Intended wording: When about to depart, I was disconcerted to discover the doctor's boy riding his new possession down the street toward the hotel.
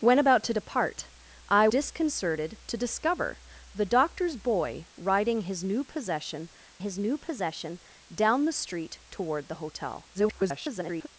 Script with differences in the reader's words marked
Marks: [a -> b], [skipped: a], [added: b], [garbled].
When about to depart, I [skipped: was] disconcerted to discover the doctor's boy riding his new possession [added: his new possession] down the street toward the hotel. [garbled]